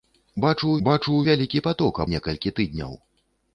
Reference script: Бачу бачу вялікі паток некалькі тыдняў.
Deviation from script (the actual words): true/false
false